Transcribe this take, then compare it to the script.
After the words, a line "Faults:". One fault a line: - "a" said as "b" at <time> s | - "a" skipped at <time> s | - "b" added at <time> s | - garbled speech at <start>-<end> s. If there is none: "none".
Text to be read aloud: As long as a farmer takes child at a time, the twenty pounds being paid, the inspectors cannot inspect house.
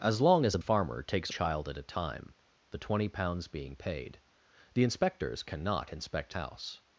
As long as a farmer takes child at a time, the twenty pounds being paid, the inspectors cannot inspect house.
Faults:
none